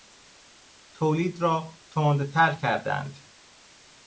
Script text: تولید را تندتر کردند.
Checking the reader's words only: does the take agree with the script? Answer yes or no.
yes